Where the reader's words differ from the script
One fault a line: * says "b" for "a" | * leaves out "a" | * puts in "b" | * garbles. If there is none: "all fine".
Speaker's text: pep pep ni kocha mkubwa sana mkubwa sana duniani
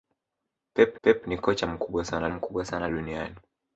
all fine